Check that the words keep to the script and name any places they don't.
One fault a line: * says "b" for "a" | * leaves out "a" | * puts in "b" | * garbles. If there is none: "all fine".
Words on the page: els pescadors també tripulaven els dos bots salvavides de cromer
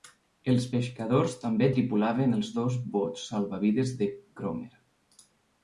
all fine